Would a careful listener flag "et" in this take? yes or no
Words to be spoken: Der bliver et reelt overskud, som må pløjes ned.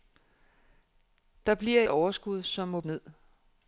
yes